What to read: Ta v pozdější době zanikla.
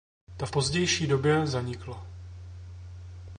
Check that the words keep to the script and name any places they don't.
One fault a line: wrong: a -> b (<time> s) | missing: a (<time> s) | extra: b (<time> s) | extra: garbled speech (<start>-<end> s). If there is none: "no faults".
no faults